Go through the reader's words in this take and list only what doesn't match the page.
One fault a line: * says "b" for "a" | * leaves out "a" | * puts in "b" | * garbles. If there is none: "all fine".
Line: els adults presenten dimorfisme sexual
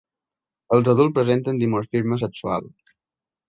all fine